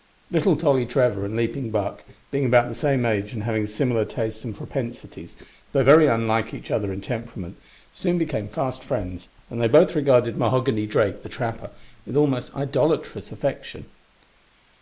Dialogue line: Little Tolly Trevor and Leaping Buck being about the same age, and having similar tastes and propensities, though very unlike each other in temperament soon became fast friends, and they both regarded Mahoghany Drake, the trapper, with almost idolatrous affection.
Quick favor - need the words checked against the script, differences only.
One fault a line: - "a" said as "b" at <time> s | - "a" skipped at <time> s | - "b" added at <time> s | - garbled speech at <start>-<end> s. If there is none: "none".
none